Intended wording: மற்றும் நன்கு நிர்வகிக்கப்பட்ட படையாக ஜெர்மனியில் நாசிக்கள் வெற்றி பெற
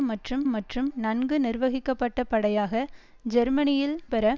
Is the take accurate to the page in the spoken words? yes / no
no